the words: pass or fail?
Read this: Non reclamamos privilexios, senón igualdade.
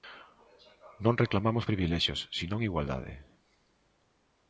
pass